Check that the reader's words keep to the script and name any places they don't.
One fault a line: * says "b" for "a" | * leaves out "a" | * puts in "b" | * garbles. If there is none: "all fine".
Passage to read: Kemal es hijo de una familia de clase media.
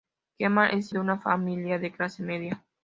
* leaves out "hijo"